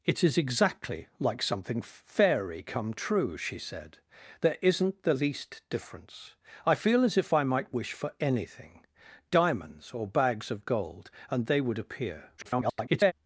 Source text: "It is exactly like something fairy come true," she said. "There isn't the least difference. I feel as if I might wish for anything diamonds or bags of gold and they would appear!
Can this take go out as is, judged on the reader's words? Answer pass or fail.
fail